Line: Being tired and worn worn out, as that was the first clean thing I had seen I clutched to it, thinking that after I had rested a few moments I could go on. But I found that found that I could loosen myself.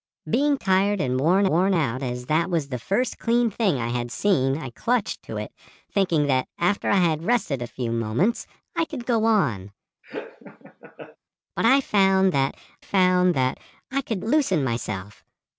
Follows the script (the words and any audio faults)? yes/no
no